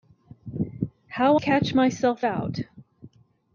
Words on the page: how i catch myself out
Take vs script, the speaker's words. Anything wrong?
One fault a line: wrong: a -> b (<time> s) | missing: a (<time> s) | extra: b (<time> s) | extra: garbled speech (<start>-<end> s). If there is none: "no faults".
missing: i (1.4 s)